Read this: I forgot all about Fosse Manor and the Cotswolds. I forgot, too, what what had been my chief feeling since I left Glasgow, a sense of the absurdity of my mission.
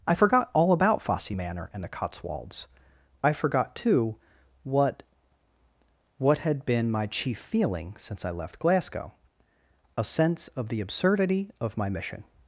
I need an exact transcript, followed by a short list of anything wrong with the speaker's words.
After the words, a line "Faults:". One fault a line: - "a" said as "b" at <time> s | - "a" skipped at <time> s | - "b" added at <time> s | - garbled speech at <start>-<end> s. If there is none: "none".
I forgot all about Fosse Manor and the Cotswolds. I forgot, too, what what had been my chief feeling since I left Glasgow, a sense of the absurdity of my mission.
Faults:
none